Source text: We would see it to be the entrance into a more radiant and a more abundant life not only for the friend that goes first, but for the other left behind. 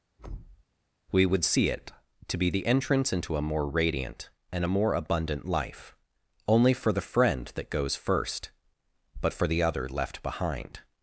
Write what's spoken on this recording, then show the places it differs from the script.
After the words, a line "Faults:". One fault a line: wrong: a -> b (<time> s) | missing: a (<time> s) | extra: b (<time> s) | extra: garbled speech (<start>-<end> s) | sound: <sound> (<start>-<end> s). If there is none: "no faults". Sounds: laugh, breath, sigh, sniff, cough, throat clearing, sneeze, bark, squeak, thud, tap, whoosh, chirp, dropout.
We would see it to be the entrance into a more radiant and a more abundant life only for the friend that goes first, but for the other left behind.
Faults:
sound: thud (0.2-0.6 s)
missing: not (5.9 s)